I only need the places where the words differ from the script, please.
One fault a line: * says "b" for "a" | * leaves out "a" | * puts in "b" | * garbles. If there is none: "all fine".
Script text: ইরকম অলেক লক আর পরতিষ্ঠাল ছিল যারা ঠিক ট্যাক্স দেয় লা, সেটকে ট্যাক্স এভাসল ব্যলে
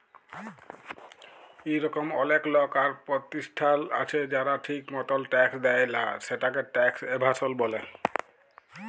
* says "আছে" for "ছিল"
* puts in "মতল"